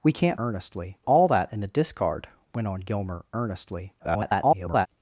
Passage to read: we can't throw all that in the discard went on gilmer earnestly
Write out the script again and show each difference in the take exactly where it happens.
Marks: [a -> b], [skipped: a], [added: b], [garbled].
we can't [throw -> earnestly] all that in the discard went on gilmer earnestly [garbled]